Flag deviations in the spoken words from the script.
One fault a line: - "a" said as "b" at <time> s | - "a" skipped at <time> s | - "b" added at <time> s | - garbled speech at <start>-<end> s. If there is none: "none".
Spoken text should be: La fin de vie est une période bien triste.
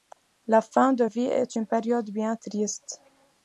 none